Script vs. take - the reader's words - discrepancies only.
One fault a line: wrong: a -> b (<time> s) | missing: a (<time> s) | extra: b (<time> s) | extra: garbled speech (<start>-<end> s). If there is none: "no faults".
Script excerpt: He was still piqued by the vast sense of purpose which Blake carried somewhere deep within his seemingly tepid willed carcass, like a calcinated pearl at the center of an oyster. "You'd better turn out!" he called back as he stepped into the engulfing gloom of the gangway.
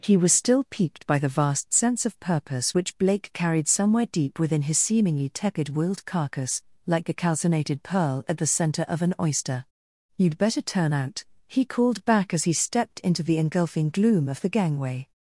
no faults